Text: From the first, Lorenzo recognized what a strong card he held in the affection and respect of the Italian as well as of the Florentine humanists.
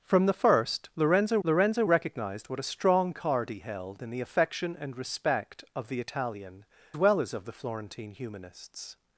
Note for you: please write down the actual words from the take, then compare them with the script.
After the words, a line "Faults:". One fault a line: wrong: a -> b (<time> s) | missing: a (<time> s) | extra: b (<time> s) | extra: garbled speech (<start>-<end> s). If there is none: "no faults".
From the first, Lorenzo Lorenzo recognized what a strong card he held in the affection and respect of the Italian well as of the Florentine humanists.
Faults:
extra: Lorenzo (1.4 s)
missing: as (6.6 s)